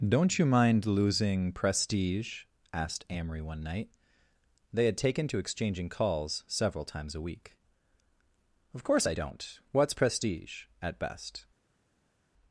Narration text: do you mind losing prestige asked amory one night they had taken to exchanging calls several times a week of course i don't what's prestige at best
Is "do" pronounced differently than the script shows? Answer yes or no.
yes